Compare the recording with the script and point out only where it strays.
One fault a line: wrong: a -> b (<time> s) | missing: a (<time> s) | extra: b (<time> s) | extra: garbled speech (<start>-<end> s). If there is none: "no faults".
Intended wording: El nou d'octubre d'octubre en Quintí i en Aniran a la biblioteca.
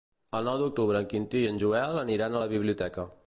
missing: d'octubre (1.0 s)
extra: Joel (1.6 s)